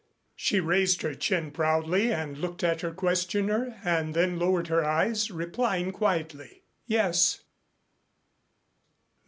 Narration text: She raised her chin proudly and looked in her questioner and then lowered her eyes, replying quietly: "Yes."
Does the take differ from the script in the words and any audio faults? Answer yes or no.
yes